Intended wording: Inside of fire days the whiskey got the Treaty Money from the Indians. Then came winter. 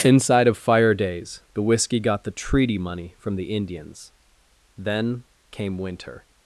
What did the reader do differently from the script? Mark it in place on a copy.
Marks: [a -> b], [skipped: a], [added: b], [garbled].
Inside of fire days the whiskey got the Treaty Money from the Indians. Then came winter.